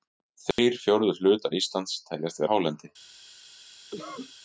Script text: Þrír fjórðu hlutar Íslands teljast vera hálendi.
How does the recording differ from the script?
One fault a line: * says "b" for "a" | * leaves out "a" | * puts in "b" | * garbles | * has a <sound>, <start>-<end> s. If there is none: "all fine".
* has a dropout, 0.5-0.6 s
* leaves out "vera"
* has a cough, 3.9-4.3 s